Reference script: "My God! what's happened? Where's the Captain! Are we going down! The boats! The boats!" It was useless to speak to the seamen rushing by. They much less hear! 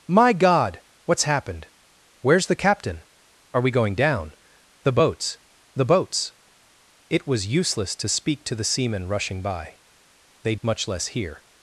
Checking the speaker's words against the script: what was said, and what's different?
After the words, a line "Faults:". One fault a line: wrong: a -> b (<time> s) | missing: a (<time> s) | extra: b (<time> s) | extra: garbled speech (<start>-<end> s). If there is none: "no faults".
"My God! what's happened? Where's the Captain! Are we going down! The boats! The boats!" It was useless to speak to the seamen rushing by. They much less hear!
Faults:
no faults